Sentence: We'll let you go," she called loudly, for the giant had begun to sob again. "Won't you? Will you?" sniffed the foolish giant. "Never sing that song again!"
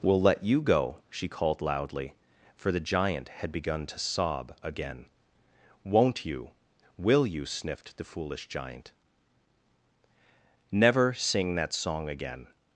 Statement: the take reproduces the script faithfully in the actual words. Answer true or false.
true